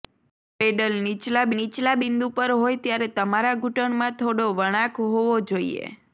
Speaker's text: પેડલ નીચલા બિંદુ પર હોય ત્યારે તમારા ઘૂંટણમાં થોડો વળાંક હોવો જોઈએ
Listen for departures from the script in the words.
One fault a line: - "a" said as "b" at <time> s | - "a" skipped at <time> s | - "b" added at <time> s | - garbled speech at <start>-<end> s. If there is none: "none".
- "નીચલા" added at 1.5 s